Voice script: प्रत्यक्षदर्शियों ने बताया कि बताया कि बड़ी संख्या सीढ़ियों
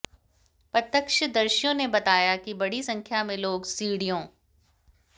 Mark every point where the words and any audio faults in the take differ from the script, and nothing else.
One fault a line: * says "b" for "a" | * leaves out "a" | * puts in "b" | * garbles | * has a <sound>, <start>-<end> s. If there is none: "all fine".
* says "बड़ी संख्या में लोग" for "बताया कि बड़ी संख्या"